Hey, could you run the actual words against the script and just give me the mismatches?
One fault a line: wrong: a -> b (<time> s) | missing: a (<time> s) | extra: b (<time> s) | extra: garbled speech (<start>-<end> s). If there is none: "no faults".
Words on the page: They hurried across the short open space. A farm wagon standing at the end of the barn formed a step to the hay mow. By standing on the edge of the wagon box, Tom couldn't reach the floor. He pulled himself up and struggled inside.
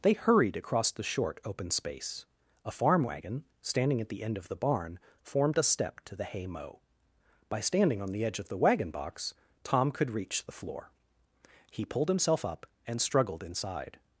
wrong: couldn't -> could (9.9 s)